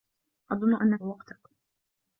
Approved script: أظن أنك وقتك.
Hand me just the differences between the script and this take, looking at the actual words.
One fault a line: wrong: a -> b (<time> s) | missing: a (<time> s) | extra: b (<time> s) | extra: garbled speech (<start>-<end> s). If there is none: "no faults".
no faults